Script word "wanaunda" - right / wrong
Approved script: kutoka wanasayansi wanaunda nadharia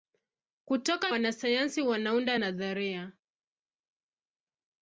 right